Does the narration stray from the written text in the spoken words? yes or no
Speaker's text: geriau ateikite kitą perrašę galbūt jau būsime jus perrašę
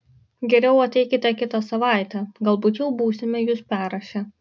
yes